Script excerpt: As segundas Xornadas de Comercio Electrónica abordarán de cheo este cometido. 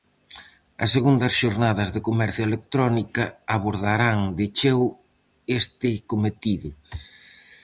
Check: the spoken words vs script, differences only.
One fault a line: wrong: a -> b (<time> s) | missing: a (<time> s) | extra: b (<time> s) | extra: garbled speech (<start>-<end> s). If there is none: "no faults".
no faults